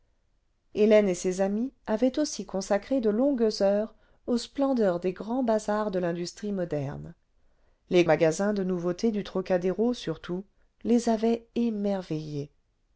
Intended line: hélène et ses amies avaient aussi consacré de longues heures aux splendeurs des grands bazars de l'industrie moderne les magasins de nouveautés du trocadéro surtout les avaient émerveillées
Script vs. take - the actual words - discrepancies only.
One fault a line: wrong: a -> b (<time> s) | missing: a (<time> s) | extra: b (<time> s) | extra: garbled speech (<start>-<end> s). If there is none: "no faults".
no faults